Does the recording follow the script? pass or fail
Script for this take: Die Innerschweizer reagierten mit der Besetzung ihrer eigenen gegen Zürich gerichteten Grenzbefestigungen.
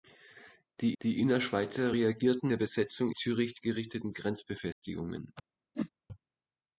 fail